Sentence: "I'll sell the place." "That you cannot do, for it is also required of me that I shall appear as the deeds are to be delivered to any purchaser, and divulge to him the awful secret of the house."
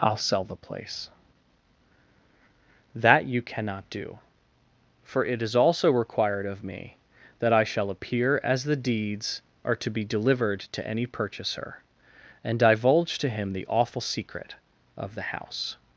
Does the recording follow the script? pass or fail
pass